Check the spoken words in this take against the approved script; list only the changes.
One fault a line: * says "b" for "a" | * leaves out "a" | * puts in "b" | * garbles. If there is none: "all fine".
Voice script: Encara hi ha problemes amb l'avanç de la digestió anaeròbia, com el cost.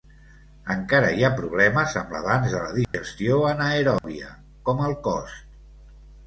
all fine